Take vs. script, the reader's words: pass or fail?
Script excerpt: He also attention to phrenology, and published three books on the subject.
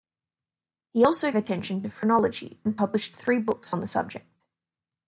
pass